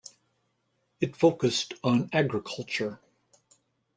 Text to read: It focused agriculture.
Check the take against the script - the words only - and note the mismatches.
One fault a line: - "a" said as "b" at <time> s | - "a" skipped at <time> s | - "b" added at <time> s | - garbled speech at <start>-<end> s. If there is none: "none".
- "on" added at 1.8 s